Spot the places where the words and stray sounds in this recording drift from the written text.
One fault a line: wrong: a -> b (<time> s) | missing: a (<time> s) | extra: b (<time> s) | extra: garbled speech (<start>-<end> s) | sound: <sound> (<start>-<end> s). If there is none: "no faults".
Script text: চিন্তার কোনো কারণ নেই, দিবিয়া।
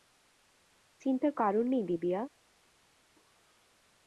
missing: কোনো (1.3 s)